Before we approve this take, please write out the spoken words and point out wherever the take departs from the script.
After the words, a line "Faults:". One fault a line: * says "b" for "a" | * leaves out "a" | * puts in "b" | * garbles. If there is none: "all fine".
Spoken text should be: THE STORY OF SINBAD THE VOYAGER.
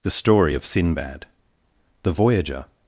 THE STORY OF SINBAD THE VOYAGER.
Faults:
all fine